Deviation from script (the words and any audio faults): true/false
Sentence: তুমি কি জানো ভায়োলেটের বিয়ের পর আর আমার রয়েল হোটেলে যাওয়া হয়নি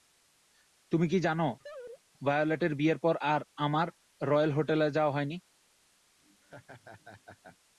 true